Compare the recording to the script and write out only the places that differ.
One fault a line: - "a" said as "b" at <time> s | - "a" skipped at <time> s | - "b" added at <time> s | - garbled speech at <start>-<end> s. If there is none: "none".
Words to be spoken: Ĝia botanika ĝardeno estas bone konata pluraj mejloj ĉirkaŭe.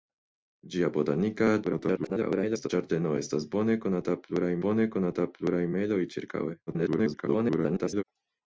- garbled speech at 1.6-2.7 s
- "bone konata pluraj" added at 4.6 s
- garbled speech at 6.7-8.0 s